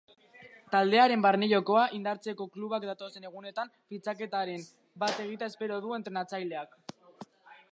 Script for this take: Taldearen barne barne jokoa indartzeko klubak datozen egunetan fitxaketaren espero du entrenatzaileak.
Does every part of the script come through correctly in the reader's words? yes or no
no